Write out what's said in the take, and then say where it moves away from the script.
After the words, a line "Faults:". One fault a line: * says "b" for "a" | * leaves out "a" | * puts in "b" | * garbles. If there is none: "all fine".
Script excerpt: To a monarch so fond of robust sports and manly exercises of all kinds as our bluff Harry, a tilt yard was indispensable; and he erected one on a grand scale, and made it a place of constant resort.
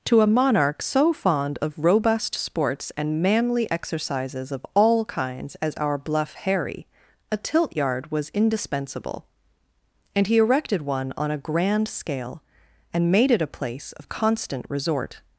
To a monarch so fond of robust sports and manly exercises of all kinds as our bluff Harry, a tilt yard was indispensable; and he erected one on a grand scale, and made it a place of constant resort.
Faults:
all fine